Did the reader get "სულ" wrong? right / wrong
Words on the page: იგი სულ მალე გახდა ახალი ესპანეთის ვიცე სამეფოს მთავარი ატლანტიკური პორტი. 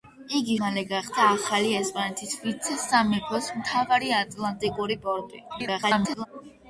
wrong